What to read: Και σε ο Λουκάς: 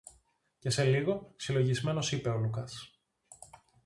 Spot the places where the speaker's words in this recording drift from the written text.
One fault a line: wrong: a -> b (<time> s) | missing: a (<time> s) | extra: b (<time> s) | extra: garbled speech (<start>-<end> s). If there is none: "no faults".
extra: λίγο συλλογισμένος είπε (0.8 s)